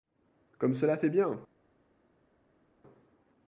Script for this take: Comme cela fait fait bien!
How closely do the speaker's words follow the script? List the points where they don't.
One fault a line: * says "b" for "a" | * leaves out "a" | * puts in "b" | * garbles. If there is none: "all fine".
* leaves out "fait"